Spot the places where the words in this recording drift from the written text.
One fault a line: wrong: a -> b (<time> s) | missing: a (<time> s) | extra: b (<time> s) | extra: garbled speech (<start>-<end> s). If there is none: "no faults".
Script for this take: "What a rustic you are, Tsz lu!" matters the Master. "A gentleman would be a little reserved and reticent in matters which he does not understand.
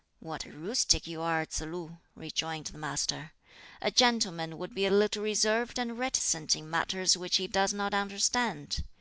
wrong: matters -> rejoined (2.2 s)